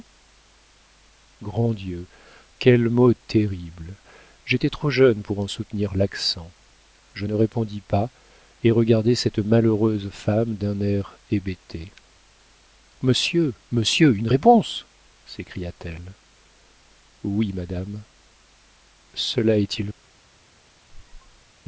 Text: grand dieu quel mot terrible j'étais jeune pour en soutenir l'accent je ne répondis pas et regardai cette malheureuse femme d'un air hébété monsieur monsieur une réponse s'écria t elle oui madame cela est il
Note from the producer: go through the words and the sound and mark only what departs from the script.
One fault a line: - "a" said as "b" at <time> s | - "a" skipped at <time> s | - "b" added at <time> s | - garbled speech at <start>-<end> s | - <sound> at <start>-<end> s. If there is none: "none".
- "trop" added at 4.7 s
- squeak at 20.9-21.5 s